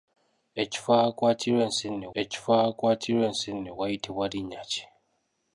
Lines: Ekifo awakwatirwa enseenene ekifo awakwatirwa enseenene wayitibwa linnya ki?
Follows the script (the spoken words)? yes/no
yes